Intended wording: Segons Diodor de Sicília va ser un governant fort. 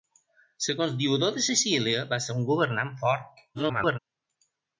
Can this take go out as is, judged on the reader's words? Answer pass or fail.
fail